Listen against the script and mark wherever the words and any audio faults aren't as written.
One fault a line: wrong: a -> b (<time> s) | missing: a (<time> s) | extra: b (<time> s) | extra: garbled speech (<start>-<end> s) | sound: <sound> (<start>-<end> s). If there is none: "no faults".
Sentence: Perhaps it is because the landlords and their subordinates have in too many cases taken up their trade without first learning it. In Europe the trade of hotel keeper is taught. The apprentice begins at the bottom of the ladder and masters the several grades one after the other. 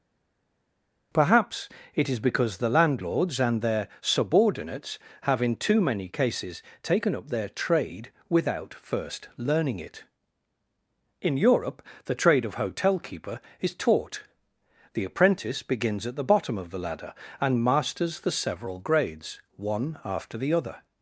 no faults